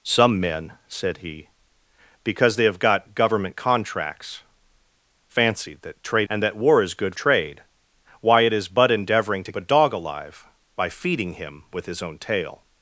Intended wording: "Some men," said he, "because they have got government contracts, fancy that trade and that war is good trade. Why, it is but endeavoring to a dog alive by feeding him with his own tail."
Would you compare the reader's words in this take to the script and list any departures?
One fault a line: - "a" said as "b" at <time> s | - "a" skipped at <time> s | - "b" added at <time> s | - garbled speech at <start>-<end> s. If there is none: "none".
none